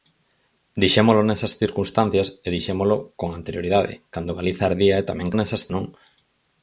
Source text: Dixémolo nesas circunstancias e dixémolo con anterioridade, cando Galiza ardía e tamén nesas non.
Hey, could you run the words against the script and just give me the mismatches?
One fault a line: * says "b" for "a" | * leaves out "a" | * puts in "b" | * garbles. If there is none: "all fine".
all fine